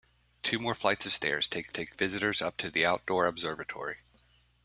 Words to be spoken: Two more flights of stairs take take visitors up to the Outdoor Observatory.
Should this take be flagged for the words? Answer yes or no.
no